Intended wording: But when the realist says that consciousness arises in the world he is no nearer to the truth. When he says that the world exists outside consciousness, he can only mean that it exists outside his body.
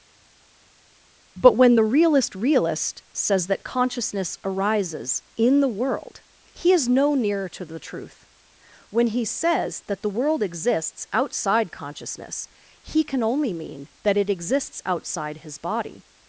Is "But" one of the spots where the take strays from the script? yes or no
no